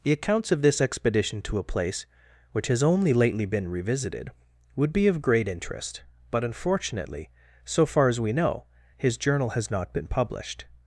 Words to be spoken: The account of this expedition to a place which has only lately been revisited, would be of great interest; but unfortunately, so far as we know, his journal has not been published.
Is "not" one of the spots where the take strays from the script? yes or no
no